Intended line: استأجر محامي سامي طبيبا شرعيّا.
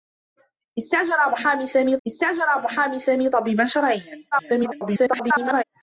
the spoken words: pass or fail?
fail